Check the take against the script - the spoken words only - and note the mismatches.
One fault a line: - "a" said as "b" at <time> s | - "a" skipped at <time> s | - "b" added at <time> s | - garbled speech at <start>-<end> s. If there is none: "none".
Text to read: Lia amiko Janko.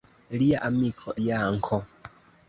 none